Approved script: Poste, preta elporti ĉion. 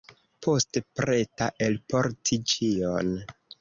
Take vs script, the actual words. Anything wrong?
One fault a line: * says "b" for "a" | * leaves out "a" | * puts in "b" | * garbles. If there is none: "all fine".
all fine